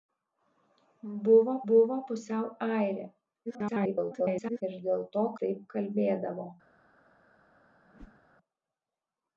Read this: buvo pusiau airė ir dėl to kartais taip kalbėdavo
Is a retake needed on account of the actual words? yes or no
yes